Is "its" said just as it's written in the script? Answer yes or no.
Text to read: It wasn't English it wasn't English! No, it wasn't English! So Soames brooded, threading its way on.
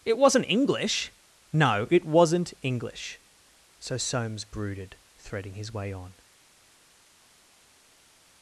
no